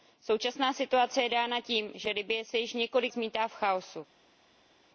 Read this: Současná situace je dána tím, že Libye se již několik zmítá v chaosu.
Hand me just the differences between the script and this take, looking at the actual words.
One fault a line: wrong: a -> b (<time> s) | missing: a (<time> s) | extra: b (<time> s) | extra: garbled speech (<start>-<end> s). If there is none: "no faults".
no faults